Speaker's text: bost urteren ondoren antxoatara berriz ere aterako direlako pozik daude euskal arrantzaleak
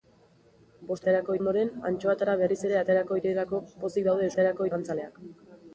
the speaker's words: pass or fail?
fail